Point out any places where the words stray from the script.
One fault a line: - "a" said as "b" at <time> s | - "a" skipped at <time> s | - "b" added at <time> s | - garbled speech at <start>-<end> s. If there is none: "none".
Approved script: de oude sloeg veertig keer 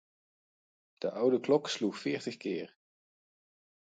- "klok" added at 1.4 s